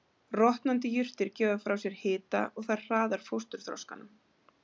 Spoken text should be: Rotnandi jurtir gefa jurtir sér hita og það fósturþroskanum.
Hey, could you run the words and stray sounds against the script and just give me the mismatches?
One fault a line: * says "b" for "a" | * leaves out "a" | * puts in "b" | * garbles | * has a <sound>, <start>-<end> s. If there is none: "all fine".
* says "frá" for "jurtir"
* puts in "hraðar"